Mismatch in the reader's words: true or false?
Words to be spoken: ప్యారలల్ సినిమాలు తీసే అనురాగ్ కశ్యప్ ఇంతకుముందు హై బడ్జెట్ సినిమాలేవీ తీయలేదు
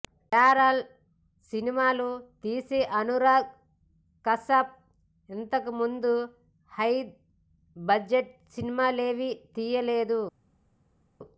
false